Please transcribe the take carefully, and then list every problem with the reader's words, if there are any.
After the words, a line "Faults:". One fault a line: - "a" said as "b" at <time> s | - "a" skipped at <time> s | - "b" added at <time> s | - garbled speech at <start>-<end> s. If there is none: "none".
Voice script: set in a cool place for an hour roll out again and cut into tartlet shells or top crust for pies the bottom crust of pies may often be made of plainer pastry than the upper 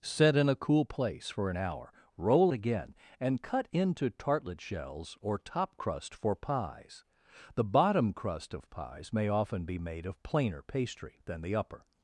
set in a cool place for an hour roll again and cut into tartlet shells or top crust for pies the bottom crust of pies may often be made of plainer pastry than the upper
Faults:
- "out" skipped at 2.5 s